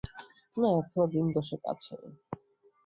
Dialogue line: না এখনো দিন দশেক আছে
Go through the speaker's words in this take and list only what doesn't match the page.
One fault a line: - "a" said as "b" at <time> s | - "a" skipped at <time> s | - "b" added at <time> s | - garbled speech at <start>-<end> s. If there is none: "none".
none